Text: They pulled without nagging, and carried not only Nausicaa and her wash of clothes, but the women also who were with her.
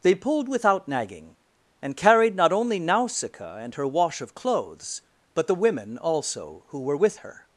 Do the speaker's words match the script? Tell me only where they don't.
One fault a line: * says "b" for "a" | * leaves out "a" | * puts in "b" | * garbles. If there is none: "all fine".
all fine